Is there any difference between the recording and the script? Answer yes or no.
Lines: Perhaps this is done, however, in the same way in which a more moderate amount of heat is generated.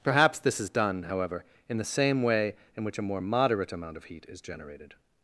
no